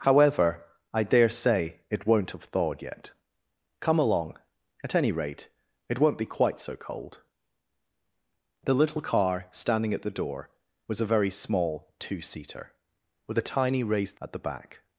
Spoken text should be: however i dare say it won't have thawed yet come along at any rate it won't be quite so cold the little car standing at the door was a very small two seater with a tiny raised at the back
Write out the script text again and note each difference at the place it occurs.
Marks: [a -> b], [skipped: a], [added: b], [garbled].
however i dare say it won't have thawed yet come along at any rate it won't be quite so cold the little car standing at the door was a very small two seater with a tiny raised at the back